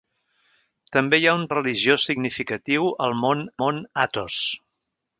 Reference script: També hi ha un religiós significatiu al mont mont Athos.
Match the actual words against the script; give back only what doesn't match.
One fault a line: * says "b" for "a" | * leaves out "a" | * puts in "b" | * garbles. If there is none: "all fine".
all fine